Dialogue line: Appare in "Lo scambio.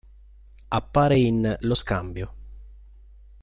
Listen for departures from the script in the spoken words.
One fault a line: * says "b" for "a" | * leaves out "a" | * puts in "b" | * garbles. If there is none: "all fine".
all fine